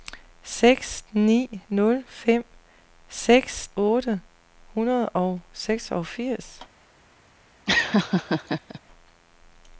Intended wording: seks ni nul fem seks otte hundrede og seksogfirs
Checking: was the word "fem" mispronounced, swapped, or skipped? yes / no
no